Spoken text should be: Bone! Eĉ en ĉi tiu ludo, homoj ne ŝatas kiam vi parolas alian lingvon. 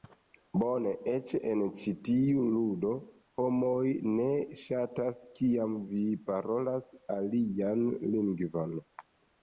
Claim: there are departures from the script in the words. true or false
false